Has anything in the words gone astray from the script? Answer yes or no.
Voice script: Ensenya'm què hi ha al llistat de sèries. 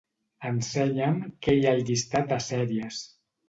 no